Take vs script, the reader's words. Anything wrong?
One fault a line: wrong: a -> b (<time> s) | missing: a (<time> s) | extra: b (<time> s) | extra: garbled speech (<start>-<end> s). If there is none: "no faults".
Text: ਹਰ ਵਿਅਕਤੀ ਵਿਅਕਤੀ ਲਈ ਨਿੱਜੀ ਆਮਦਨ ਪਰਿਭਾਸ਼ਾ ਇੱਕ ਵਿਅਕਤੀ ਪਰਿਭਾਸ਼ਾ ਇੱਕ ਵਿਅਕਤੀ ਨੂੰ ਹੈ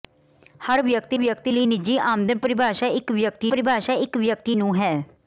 no faults